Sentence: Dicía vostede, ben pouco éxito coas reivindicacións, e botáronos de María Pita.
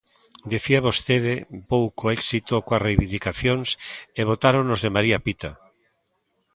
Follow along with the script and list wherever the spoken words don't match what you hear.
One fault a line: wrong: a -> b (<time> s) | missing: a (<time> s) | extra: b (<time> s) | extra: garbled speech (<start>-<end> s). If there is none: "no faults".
missing: ben (1.3 s)